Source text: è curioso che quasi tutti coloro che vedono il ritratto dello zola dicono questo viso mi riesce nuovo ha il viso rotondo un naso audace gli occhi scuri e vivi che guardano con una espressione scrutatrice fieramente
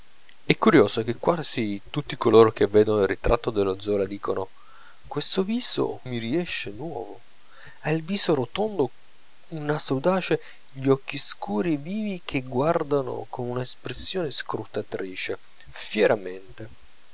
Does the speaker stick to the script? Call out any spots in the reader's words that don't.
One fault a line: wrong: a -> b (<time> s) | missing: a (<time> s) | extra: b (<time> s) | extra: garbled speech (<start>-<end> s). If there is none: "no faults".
no faults